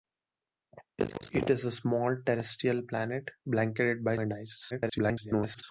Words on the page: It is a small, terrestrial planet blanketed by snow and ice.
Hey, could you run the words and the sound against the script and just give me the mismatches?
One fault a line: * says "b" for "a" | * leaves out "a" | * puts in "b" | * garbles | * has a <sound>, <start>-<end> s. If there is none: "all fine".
* leaves out "snow"
* garbles